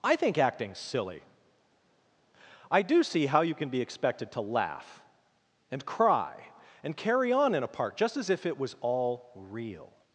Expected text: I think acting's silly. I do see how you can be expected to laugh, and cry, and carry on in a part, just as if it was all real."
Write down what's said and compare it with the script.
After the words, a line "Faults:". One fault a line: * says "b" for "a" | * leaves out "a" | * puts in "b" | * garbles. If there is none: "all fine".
I think acting's silly. I do see how you can be expected to laugh, and cry, and carry on in a part, just as if it was all real."
Faults:
all fine